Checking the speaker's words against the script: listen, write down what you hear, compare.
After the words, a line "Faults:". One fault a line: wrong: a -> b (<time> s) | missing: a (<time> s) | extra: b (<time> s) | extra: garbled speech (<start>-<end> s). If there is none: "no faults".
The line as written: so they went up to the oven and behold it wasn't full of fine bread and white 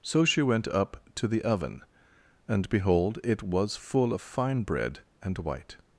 so she went up to the oven and behold it was full of fine bread and white
Faults:
wrong: they -> she (0.2 s)
wrong: wasn't -> was (3.4 s)